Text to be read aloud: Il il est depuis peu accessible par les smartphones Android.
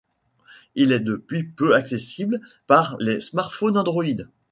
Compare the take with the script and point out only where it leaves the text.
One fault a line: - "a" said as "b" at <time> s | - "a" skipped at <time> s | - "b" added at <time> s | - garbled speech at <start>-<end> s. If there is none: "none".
- "il" skipped at 0.9 s